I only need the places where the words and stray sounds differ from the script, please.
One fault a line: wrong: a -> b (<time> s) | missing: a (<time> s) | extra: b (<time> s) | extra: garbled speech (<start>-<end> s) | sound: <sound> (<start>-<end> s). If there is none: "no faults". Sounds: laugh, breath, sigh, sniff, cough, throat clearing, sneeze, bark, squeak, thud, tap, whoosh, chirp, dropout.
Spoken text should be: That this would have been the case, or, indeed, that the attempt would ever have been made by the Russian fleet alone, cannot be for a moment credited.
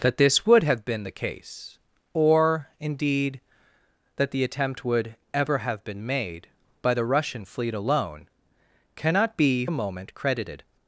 missing: for (9.7 s)